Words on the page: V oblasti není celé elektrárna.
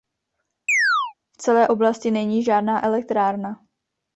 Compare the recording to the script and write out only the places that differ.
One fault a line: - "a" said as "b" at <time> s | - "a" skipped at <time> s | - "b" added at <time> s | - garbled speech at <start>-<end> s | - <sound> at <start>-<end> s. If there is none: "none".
- chirp at 0.7-1.1 s
- "celé" added at 1.4 s
- "celé" said as "žádná" at 2.4 s